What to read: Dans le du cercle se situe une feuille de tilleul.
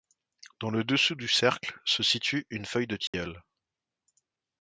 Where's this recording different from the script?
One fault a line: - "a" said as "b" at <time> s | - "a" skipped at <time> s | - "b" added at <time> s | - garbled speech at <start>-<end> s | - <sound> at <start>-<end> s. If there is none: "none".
- "dessous" added at 0.8 s
- dropout at 3.1-3.1 s